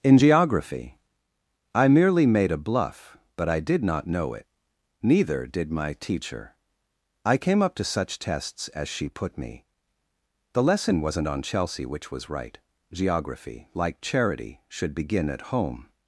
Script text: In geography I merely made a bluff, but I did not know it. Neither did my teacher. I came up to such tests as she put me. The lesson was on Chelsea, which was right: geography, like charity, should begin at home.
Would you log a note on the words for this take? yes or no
yes